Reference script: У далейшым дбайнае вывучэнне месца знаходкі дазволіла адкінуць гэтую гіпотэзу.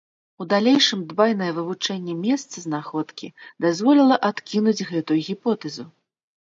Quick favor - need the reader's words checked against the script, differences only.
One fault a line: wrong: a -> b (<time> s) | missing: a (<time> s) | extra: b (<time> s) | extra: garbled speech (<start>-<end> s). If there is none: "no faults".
no faults